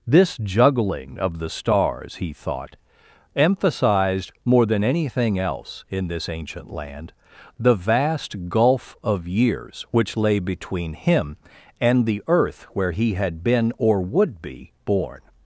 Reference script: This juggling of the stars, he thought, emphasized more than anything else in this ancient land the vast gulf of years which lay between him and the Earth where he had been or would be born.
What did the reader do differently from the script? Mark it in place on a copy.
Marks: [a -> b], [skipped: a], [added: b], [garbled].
This juggling of the stars, he thought, emphasized more than anything else in this ancient land the vast gulf of years which lay between him and the Earth where he had been or would be born.